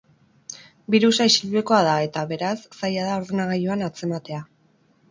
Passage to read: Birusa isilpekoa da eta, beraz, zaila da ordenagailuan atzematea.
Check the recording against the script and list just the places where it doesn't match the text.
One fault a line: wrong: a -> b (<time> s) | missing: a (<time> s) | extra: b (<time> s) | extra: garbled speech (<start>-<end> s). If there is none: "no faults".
no faults